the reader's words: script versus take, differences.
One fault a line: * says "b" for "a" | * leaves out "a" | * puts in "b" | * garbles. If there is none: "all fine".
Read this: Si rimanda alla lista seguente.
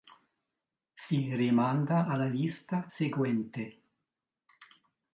all fine